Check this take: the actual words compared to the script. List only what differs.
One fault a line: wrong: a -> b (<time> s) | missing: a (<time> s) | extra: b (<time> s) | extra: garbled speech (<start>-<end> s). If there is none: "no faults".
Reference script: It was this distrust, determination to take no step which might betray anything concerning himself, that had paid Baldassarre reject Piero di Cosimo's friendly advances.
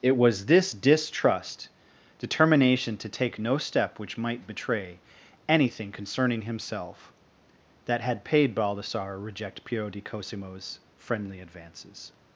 no faults